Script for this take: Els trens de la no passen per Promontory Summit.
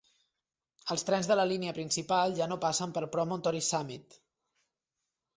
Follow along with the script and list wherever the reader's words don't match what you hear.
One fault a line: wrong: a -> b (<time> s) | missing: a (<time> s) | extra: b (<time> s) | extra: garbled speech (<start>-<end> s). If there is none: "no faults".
extra: línia principal ja (1.5 s)